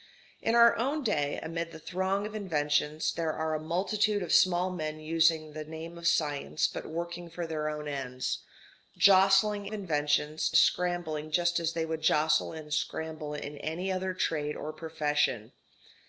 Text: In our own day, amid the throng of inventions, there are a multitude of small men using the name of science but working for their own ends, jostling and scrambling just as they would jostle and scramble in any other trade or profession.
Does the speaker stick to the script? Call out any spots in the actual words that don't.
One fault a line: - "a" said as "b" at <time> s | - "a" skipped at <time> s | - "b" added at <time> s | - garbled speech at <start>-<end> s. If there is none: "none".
- "and" said as "inventions" at 9.7 s